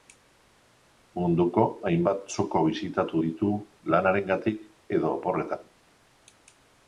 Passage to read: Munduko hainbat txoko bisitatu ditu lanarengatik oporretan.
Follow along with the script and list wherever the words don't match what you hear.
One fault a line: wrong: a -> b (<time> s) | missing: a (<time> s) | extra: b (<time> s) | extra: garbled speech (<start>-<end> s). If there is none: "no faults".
extra: edo (5.0 s)